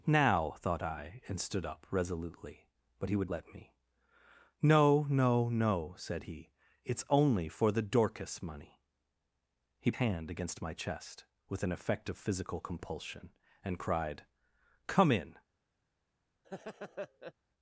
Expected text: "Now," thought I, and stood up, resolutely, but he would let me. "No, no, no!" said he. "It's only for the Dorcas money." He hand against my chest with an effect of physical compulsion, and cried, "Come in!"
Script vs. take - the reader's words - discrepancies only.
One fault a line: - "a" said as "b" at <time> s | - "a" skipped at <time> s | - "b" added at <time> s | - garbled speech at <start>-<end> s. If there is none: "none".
none